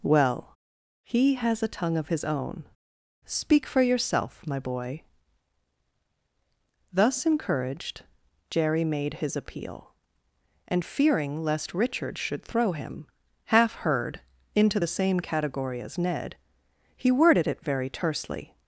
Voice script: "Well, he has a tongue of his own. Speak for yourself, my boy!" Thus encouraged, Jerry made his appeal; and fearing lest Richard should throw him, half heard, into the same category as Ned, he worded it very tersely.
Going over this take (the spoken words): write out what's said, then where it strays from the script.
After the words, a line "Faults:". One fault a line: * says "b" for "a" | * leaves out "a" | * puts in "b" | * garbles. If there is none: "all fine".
"Well, he has a tongue of his own. Speak for yourself, my boy!" Thus encouraged, Jerry made his appeal; and fearing lest Richard should throw him, half heard, into the same category as Ned, he worded it very tersely.
Faults:
all fine